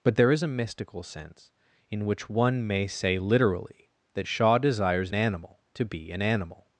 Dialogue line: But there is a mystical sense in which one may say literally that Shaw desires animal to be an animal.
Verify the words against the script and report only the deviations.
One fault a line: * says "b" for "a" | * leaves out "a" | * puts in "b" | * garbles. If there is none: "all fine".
all fine